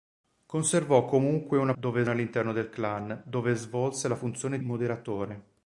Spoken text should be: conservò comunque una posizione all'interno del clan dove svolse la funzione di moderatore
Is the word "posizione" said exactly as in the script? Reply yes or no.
no